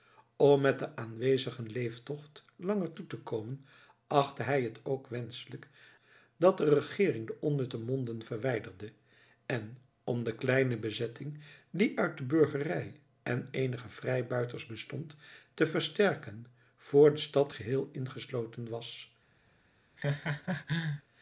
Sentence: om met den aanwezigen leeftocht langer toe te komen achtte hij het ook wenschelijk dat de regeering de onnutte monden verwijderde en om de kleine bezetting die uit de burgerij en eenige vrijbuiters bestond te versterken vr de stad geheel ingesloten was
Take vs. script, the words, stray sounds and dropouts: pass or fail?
fail